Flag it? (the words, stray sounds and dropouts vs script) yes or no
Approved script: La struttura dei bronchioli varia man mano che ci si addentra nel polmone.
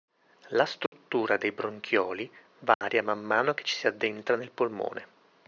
yes